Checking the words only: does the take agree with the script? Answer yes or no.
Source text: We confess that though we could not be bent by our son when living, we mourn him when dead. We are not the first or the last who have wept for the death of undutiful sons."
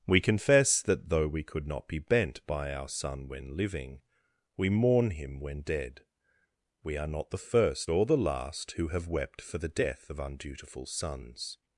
yes